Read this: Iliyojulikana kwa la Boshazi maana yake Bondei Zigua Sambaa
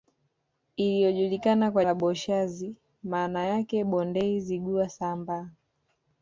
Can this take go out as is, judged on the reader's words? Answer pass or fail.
pass